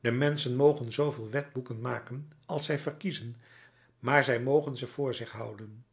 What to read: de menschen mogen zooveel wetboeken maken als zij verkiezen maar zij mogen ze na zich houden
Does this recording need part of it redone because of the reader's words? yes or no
yes